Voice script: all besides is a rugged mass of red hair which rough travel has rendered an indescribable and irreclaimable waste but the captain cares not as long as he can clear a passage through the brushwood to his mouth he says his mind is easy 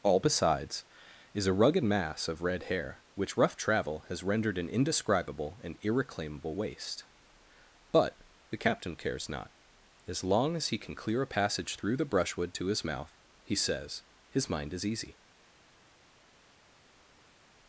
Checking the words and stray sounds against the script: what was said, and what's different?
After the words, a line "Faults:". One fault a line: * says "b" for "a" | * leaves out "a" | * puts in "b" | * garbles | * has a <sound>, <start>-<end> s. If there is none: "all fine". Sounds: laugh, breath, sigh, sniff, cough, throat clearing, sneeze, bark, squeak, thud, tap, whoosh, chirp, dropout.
all besides is a rugged mass of red hair which rough travel has rendered an indescribable and irreclaimable waste but the captain cares not as long as he can clear a passage through the brushwood to his mouth he says his mind is easy
Faults:
all fine